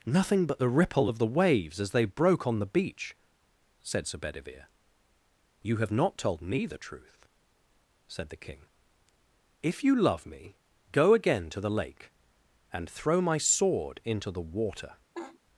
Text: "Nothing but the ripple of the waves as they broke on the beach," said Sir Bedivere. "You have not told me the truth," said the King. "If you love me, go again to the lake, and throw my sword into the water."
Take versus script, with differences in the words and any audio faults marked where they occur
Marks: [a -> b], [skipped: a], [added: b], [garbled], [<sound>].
"Nothing but the ripple of the waves as they broke on the beach," said Sir Bedivere. "You have not told me the truth," said the King. "If you love me, go again to the lake, and throw my sword into the water." [laugh]